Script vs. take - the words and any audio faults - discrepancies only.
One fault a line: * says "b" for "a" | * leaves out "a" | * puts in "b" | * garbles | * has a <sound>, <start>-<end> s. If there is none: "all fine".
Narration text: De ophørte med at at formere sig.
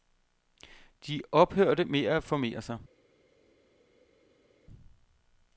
* leaves out "at"